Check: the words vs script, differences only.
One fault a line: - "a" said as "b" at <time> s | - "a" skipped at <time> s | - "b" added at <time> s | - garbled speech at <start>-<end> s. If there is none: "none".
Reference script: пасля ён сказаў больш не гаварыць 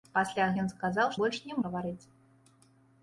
none